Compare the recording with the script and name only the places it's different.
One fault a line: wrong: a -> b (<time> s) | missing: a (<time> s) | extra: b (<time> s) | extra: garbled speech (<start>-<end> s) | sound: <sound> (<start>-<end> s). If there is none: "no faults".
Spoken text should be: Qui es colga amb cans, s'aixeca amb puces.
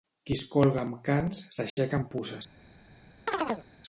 sound: dropout (1.7-1.8 s)
sound: chirp (3.3-3.7 s)